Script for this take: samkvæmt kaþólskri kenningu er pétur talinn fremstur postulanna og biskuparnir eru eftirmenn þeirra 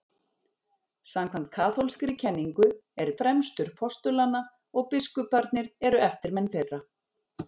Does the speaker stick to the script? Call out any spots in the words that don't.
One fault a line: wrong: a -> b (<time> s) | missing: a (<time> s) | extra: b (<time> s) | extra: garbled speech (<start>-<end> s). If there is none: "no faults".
missing: pétur talinn (3.1 s)